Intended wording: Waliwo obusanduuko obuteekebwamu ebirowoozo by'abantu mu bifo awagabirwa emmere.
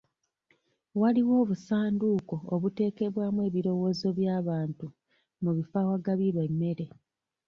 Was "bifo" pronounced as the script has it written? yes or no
yes